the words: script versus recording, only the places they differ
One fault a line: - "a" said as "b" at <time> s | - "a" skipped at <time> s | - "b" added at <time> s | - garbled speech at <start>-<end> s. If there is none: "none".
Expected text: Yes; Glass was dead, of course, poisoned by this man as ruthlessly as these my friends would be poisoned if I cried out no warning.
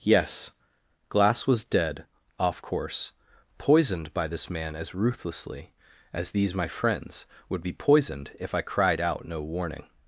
- "of" said as "off" at 2.4 s